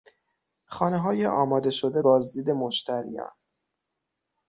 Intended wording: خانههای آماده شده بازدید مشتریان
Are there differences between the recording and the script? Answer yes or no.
no